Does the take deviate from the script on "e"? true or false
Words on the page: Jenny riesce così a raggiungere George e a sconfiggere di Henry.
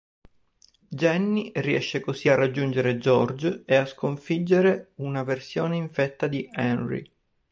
false